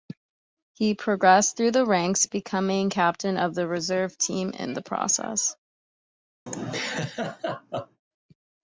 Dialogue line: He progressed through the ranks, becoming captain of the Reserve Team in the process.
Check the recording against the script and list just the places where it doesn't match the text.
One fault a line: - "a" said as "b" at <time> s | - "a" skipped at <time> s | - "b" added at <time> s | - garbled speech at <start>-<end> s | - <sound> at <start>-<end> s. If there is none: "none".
- laugh at 6.5-8.0 s